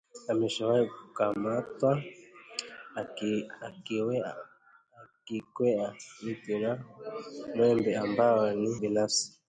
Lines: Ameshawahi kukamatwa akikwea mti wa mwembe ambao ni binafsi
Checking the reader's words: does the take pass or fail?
pass